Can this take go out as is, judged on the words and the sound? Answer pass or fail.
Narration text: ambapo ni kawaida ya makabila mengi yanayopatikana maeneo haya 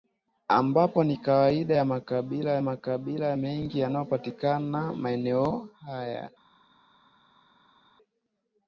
fail